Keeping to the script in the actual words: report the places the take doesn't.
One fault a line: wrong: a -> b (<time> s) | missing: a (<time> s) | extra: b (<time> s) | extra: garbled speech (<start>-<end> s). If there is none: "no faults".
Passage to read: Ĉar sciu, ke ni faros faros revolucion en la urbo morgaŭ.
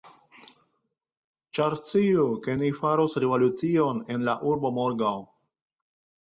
missing: faros (3.2 s)